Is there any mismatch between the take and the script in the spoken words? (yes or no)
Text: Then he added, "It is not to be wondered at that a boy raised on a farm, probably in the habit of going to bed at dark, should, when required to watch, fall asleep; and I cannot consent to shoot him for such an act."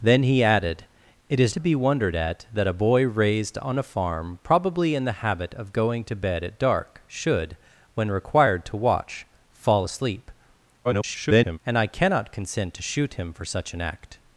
yes